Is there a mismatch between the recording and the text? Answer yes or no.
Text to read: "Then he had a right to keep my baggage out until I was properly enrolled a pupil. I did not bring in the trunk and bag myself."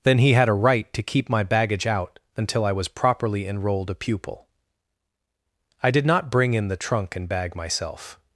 no